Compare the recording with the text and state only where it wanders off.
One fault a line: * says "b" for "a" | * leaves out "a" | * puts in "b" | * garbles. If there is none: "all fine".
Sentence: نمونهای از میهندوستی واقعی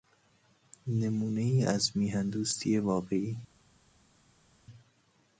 all fine